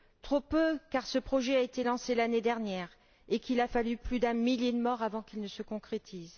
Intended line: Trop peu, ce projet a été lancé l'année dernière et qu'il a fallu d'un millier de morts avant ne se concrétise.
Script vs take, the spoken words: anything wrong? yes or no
yes